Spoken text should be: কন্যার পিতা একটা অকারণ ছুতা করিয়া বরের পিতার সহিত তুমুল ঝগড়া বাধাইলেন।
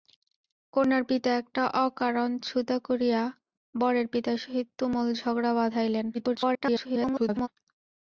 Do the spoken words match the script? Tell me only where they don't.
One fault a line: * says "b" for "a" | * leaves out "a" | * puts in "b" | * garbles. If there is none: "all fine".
* garbles